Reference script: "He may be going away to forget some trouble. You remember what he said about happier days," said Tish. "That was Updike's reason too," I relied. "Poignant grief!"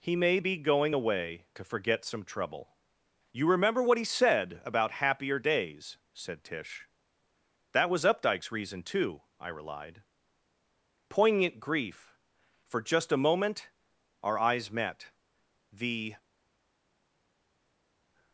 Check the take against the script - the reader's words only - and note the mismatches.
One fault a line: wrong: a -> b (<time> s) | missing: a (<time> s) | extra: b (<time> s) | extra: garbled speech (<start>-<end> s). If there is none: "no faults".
extra: For just a moment our eyes met The (12.6 s)